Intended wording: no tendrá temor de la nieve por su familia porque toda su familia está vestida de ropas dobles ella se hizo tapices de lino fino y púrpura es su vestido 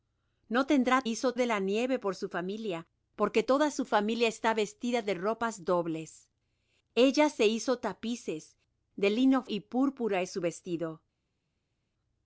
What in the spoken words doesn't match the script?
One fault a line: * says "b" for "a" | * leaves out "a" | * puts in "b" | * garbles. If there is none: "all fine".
* says "hizo" for "temor"
* leaves out "fino"